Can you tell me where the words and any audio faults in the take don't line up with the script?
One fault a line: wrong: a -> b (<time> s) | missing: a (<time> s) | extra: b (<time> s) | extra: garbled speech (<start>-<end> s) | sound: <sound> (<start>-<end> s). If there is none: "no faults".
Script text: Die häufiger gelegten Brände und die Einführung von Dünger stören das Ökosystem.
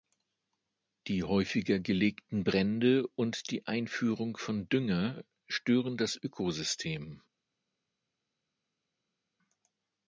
no faults